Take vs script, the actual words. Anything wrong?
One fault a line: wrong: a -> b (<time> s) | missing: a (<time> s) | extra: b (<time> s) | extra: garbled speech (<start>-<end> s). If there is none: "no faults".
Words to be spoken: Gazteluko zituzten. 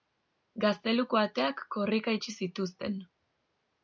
extra: ateak korrika itxi (1.2 s)